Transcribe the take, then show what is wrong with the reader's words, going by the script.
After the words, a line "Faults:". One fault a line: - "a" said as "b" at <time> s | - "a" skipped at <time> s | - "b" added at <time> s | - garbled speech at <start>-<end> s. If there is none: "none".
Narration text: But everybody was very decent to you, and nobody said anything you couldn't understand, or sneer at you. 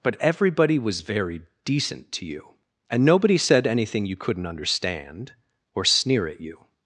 But everybody was very decent to you, and nobody said anything you couldn't understand, or sneer at you.
Faults:
none